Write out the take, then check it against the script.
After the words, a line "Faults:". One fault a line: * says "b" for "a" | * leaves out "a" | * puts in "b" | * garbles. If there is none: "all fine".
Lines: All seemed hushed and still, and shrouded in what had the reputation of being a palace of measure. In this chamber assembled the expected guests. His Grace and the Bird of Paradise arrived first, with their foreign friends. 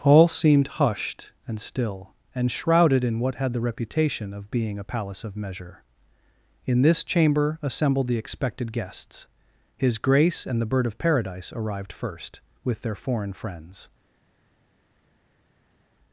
All seemed hushed and still, and shrouded in what had the reputation of being a palace of measure. In this chamber assembled the expected guests. His Grace and the Bird of Paradise arrived first, with their foreign friends.
Faults:
all fine